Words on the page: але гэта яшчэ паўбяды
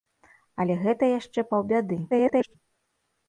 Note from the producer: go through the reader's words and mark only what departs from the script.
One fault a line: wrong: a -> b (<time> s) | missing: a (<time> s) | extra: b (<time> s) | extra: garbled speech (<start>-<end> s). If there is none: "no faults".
extra: garbled speech (2.1-2.6 s)